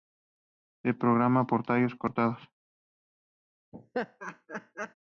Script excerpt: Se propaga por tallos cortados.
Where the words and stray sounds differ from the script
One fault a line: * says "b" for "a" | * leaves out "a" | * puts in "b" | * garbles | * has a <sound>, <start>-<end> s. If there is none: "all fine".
* has a laugh, 3.7-4.9 s